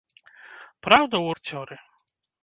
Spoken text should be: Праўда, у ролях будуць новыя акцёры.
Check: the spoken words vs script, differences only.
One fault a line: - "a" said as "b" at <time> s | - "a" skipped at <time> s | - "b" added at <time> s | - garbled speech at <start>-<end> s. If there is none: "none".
- "ролях будуць новыя" skipped at 1.4 s